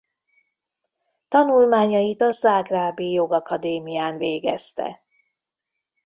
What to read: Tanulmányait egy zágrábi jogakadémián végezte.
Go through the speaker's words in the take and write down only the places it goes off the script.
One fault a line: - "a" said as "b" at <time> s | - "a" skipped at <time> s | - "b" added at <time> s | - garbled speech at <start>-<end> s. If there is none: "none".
- "egy" said as "a" at 2.2 s